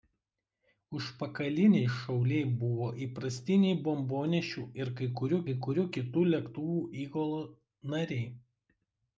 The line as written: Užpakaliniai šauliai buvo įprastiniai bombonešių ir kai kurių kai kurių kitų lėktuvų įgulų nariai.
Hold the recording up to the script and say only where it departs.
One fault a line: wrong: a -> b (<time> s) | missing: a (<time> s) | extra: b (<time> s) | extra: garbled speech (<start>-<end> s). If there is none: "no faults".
no faults